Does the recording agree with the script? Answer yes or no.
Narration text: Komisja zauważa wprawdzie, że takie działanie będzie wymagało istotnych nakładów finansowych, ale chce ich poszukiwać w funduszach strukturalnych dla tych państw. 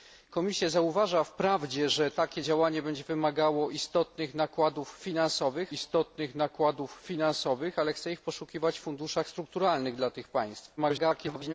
no